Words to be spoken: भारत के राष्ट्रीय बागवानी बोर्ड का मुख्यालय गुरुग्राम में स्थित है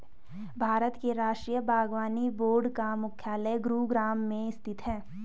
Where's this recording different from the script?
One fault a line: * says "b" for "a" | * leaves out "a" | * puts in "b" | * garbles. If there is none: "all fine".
all fine